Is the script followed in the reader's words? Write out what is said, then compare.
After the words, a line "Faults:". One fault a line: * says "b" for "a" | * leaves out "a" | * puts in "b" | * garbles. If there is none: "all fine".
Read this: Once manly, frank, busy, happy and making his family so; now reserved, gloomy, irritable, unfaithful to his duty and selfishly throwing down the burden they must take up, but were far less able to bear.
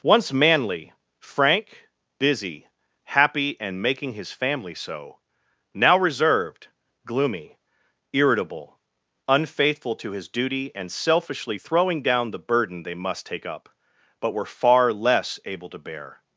Once manly, frank, busy, happy and making his family so; now reserved, gloomy, irritable, unfaithful to his duty and selfishly throwing down the burden they must take up, but were far less able to bear.
Faults:
all fine